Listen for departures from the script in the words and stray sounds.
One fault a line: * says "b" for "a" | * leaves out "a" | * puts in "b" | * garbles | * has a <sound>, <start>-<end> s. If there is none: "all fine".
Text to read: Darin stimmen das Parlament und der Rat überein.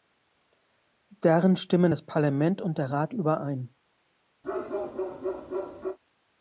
* has a bark, 4.4-6.0 s